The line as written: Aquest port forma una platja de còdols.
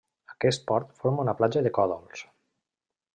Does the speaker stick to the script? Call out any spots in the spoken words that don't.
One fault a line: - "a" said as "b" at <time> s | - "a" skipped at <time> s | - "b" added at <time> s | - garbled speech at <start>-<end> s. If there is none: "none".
none